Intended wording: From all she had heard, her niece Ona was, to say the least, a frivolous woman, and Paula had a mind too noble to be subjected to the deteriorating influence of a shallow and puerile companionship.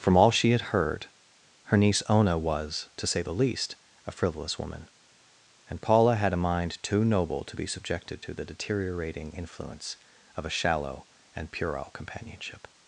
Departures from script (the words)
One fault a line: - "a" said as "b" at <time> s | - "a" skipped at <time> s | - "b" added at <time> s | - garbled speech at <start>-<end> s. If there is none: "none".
none